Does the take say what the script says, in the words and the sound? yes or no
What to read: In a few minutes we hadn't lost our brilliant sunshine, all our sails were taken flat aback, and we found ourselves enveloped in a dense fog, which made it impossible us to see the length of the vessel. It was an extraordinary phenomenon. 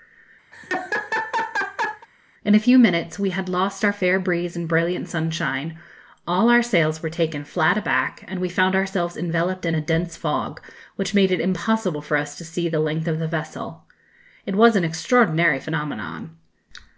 no